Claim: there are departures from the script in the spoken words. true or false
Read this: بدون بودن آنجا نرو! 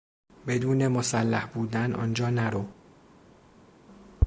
true